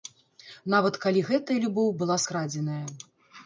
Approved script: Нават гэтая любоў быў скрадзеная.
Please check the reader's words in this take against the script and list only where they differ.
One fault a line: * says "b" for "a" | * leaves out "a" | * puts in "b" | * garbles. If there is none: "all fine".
* puts in "калі"
* says "была" for "быў"